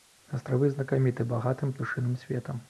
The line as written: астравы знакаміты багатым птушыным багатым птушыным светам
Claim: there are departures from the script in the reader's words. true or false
true